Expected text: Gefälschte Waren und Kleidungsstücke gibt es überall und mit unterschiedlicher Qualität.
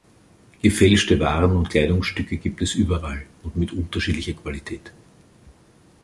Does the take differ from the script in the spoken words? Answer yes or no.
no